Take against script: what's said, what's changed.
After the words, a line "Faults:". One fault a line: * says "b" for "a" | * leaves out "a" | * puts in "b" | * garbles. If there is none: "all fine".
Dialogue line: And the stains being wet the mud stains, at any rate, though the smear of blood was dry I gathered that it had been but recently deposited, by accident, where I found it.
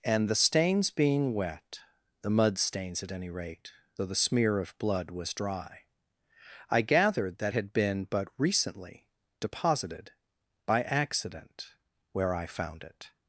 And the stains being wet the mud stains, at any rate, though the smear of blood was dry I gathered that had been but recently deposited, by accident, where I found it.
Faults:
* leaves out "it"